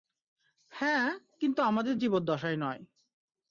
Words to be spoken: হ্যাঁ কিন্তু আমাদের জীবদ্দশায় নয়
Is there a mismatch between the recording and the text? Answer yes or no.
no